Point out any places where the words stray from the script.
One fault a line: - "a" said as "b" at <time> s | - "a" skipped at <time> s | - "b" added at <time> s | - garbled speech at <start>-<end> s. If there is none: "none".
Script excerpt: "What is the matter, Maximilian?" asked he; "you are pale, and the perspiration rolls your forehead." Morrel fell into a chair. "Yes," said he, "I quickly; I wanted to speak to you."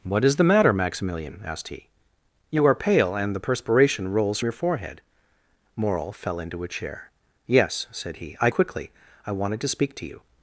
none